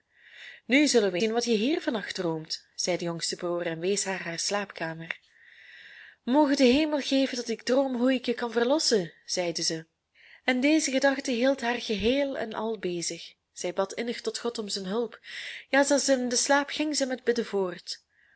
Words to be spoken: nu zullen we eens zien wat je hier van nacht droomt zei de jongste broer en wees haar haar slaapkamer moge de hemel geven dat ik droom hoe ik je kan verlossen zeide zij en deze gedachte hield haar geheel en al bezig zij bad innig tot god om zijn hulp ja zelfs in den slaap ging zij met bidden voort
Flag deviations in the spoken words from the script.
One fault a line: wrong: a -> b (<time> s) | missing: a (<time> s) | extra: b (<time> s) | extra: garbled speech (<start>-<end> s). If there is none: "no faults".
missing: eens (1.2 s)